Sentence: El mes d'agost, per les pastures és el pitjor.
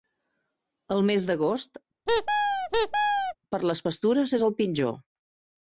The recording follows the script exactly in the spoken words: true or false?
true